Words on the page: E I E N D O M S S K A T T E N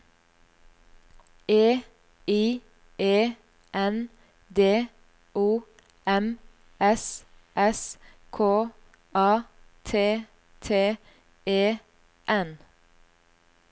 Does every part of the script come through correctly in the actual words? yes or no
yes